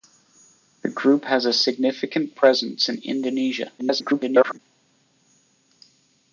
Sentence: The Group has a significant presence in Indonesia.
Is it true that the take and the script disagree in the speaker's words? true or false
true